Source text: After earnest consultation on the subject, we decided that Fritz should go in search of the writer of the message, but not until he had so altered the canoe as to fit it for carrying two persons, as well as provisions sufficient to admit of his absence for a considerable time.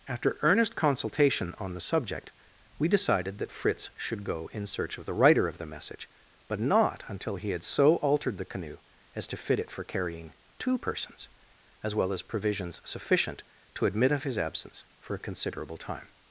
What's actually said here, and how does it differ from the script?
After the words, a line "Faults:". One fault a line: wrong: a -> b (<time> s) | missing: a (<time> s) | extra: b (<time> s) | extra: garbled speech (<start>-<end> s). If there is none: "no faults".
After earnest consultation on the subject, we decided that Fritz should go in search of the writer of the message, but not until he had so altered the canoe as to fit it for carrying two persons, as well as provisions sufficient to admit of his absence for a considerable time.
Faults:
no faults